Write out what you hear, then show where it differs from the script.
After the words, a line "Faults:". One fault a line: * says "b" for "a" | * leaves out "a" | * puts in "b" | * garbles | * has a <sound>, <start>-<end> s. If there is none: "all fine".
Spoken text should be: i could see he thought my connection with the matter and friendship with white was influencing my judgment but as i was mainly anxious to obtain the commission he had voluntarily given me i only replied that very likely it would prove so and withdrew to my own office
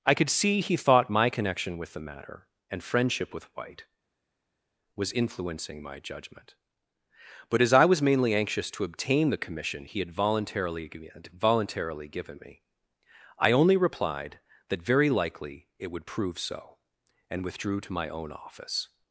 i could see he thought my connection with the matter and friendship with white was influencing my judgment but as i was mainly anxious to obtain the commission he had voluntarily voluntarily given me i only replied that very likely it would prove so and withdrew to my own office
Faults:
* puts in "voluntarily"